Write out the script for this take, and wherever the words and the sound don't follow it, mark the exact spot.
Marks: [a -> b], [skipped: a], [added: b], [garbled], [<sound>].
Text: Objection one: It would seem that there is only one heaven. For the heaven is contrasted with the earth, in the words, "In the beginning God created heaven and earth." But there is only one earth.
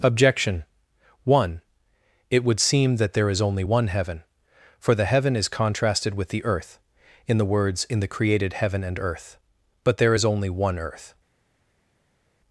Objection one: It would seem that there is only one heaven. For the heaven is contrasted with the earth, in the words, "In the [skipped: beginning God] created heaven and earth." But there is only one earth.